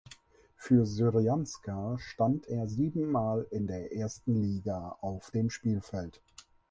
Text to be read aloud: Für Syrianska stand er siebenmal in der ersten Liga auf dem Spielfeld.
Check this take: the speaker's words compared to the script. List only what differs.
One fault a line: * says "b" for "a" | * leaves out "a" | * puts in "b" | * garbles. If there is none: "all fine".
all fine